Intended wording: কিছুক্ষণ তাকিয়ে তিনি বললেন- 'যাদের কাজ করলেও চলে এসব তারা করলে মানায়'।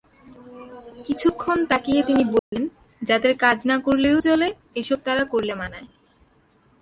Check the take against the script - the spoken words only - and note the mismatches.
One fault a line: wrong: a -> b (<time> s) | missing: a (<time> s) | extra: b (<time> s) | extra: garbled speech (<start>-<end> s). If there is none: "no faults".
extra: না (3.6 s)